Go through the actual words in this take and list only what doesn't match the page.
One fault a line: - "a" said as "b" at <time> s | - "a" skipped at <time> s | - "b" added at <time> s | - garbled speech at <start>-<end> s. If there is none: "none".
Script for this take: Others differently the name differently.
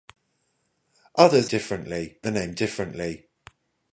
none